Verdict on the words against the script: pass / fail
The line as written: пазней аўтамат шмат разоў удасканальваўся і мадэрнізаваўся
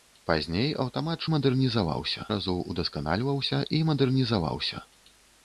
fail